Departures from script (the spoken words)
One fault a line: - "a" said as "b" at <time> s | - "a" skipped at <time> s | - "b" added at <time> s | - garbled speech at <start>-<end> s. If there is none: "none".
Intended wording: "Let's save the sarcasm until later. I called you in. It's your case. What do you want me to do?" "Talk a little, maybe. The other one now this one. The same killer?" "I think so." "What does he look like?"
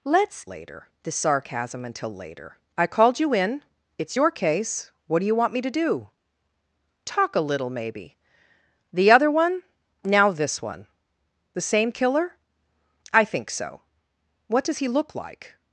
- "save" said as "later" at 0.4 s